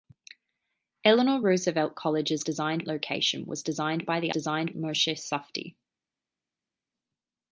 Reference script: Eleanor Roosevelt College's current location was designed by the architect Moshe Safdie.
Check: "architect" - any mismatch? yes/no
yes